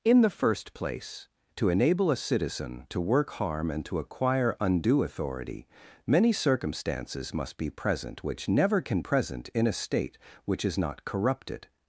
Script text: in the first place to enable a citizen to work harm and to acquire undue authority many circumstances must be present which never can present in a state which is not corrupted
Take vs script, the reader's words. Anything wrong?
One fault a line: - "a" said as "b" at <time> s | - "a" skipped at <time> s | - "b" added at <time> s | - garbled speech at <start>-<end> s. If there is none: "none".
none